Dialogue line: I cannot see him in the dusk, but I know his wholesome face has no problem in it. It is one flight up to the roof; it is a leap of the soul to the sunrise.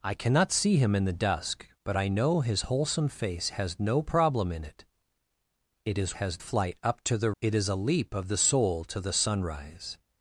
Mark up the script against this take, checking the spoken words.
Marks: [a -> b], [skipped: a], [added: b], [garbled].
I cannot see him in the dusk, but I know his wholesome face has no problem in it. It is [one -> has] flight up to the [skipped: roof;] it is a leap of the soul to the sunrise.